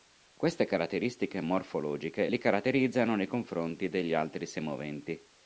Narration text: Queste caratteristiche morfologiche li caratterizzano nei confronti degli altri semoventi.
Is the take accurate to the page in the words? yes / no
yes